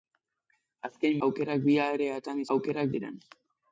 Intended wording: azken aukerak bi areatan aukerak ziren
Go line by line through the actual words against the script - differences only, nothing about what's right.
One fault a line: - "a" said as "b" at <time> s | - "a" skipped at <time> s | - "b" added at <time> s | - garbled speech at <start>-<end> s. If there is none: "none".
none